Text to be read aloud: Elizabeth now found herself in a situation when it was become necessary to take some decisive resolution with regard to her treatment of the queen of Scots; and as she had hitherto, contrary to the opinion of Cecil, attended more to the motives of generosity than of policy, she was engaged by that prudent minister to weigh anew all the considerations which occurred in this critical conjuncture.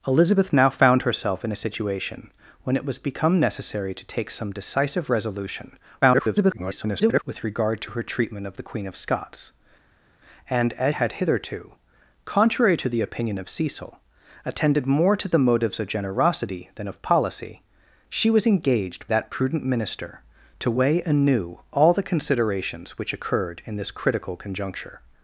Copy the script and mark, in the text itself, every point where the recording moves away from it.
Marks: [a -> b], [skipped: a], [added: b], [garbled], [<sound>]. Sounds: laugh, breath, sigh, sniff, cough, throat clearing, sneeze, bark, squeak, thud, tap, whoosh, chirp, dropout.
Elizabeth now found herself in a situation when it was become necessary to take some decisive resolution [garbled] with regard to her treatment of the queen of Scots; and as [skipped: she] had hitherto, contrary to the opinion of Cecil, attended more to the motives of generosity than of policy, she was engaged [skipped: by] that prudent minister to weigh anew all the considerations which occurred in this critical conjuncture.